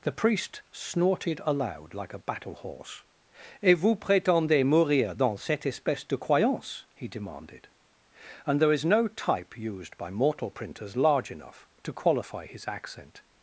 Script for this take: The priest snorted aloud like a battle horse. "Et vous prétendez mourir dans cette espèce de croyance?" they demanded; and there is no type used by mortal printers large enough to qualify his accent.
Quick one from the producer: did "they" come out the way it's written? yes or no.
no